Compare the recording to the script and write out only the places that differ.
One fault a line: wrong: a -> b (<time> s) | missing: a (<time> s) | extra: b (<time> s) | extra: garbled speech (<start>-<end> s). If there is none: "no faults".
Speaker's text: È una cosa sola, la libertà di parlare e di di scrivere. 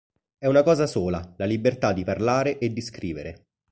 missing: di (2.8 s)